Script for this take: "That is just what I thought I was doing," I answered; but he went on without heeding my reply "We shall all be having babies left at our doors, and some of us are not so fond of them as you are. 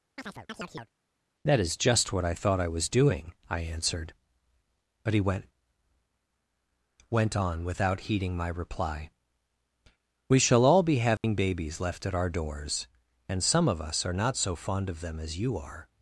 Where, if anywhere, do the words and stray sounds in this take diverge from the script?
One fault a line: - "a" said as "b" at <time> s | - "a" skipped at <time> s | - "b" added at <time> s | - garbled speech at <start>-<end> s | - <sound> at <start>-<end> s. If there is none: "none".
- chirp at 0.2-0.9 s
- "went" added at 7.1 s
- dropout at 11.2-11.2 s